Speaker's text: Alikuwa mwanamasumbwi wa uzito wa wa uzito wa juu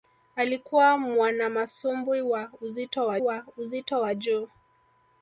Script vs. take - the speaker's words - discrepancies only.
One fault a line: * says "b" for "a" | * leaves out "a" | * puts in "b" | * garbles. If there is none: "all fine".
all fine